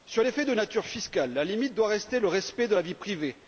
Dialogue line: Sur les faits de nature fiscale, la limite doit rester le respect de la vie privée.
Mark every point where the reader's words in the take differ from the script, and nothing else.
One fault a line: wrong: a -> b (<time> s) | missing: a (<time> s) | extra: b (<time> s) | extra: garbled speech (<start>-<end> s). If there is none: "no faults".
no faults